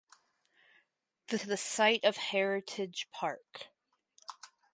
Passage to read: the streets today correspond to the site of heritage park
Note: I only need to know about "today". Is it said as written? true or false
false